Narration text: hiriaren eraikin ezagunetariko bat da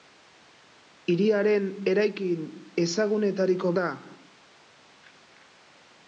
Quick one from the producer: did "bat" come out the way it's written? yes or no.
no